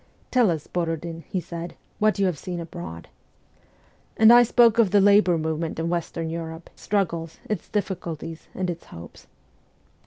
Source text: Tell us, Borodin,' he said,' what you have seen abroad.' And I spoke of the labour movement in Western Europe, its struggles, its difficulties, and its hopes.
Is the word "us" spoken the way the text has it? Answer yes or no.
yes